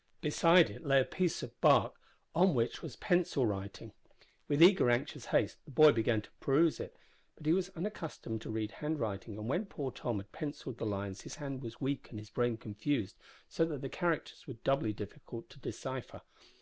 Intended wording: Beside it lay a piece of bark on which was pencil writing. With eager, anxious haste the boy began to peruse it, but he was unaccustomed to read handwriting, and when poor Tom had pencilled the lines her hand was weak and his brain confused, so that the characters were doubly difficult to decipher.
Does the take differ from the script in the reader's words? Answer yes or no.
yes